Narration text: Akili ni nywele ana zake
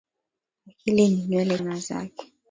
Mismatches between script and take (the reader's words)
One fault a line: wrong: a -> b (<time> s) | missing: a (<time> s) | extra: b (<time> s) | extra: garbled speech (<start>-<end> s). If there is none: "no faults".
no faults